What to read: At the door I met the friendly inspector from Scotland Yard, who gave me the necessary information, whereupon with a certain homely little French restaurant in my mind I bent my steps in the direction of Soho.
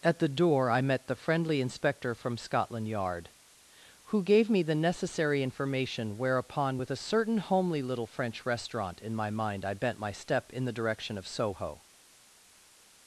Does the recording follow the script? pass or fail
fail